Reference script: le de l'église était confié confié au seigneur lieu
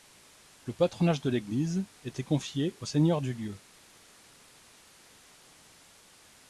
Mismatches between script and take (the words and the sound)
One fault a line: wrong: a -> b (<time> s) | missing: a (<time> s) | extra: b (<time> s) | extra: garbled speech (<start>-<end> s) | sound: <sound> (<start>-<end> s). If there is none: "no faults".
extra: patronage (0.7 s)
missing: confié (2.8 s)
extra: du (3.2 s)